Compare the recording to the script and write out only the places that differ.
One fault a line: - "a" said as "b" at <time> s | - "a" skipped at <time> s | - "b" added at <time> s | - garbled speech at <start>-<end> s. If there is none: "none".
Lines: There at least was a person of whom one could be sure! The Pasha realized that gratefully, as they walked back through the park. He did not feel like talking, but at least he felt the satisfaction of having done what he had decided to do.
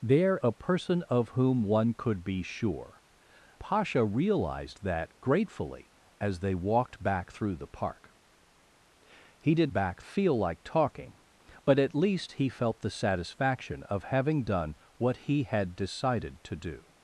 - "at least was" skipped at 0.4 s
- "The" skipped at 3.0 s
- "not" said as "back" at 9.7 s